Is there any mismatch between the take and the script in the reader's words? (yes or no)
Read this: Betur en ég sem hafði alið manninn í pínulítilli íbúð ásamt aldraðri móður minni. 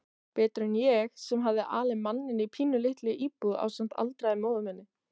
no